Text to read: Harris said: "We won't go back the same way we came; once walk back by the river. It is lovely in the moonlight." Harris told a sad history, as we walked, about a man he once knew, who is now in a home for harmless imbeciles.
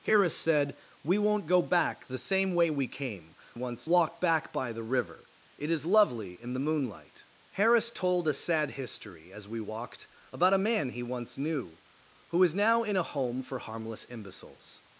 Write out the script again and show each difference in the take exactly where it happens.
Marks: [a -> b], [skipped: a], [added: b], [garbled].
Harris said: "We won't go back the same way we came; once walk back by the river. It is lovely in the moonlight." Harris told a sad history, as we walked, about a man he once knew, who is now in a home for harmless imbeciles.